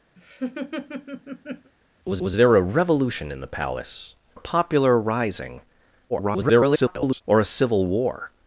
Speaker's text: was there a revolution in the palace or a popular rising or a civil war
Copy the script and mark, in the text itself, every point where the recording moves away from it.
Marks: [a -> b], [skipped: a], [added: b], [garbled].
was [added: was] there a revolution in the palace [skipped: or] a popular rising [garbled] or a civil war